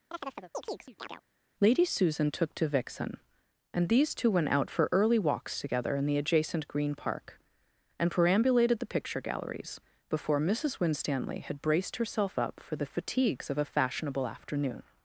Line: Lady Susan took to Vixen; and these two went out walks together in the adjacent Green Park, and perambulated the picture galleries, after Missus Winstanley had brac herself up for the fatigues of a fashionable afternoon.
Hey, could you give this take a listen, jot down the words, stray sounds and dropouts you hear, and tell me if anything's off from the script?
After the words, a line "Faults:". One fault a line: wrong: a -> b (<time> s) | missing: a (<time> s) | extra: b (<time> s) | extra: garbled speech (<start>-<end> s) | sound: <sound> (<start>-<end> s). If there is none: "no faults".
Lady Susan took to Vixen; and these two went out for early walks together in the adjacent Green Park, and perambulated the picture galleries, before Missus Winstanley had braced herself up for the fatigues of a fashionable afternoon.
Faults:
sound: chirp (0.1-1.2 s)
extra: for early (4.7 s)
wrong: after -> before (10.1 s)
wrong: brac -> braced (11.6 s)